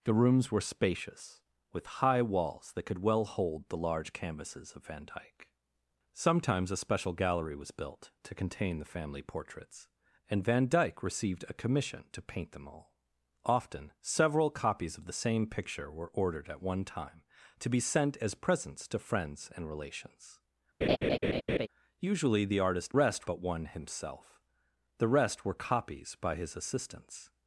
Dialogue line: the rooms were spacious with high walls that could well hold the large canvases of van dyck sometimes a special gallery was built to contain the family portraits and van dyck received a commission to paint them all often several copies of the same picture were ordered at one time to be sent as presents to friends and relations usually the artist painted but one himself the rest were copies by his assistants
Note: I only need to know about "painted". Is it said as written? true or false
false